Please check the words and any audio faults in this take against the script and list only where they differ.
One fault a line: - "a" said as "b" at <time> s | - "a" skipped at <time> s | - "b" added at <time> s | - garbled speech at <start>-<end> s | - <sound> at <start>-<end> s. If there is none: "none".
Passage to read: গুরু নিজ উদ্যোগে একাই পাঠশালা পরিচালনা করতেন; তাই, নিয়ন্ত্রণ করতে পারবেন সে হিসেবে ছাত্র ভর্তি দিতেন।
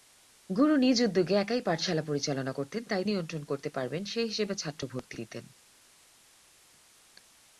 none